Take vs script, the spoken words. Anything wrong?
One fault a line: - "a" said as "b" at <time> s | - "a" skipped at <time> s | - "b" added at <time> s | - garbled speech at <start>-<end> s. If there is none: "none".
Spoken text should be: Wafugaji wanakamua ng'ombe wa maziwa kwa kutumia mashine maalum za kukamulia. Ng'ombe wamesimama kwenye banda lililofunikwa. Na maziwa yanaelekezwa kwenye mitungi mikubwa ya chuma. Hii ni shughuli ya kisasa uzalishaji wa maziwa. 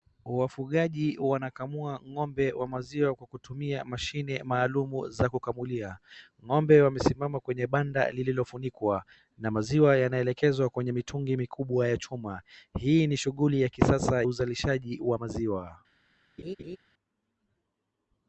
none